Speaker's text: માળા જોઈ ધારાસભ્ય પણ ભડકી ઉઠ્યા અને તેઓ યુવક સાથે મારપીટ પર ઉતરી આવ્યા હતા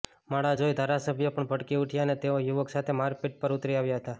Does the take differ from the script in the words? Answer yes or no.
no